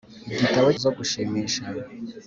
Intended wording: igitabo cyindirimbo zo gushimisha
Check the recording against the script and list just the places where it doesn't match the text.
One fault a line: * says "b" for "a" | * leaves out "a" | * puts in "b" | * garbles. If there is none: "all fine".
* leaves out "cyindirimbo"